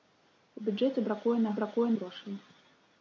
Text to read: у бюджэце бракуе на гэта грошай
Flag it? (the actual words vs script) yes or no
yes